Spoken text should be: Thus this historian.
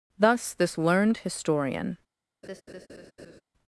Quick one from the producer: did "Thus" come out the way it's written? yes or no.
yes